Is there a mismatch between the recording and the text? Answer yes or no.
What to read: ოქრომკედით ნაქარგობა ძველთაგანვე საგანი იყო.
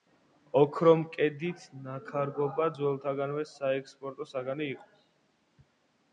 yes